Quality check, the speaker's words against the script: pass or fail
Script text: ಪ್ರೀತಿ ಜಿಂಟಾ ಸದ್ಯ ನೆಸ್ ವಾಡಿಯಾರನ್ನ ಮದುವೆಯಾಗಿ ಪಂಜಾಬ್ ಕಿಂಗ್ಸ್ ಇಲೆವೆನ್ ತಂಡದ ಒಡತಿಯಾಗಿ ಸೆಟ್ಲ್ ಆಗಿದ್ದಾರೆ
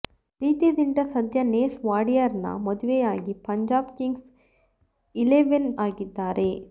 fail